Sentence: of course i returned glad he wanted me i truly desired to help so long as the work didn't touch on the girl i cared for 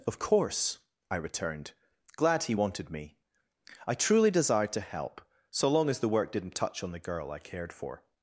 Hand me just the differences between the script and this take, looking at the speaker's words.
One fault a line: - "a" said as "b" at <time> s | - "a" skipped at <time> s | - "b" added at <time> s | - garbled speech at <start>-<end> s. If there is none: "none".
none